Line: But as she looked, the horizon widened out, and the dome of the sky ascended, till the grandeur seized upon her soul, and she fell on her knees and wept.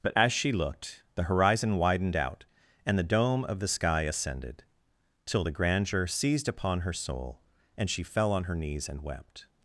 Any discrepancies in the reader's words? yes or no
no